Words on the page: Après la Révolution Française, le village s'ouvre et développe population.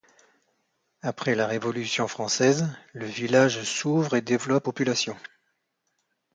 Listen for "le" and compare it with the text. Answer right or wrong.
right